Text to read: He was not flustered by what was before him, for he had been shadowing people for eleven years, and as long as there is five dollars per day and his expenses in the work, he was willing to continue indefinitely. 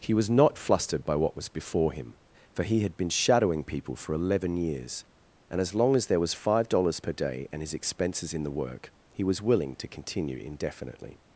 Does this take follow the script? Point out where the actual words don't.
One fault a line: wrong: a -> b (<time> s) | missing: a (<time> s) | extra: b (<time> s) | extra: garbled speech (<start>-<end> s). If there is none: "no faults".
wrong: is -> was (6.2 s)